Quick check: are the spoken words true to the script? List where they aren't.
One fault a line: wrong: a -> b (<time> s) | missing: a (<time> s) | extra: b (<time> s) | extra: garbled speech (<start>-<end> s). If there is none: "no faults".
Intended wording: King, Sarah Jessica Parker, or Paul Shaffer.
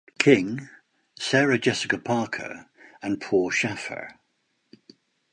wrong: or -> and (3.0 s)